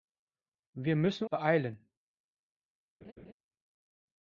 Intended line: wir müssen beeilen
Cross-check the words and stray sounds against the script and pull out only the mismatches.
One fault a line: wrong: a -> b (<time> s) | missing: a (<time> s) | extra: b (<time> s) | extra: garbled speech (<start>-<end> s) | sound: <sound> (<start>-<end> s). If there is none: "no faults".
sound: laugh (3.0-3.3 s)